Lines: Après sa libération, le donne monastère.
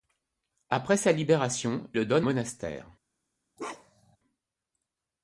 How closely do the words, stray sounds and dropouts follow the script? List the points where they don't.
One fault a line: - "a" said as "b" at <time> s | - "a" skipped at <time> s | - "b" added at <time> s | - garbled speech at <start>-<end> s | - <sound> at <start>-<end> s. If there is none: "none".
- bark at 3.6-4.2 s